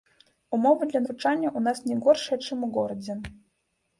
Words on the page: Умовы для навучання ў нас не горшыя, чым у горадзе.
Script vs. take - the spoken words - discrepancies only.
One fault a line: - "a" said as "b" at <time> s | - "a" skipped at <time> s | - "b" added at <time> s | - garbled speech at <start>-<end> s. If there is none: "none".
none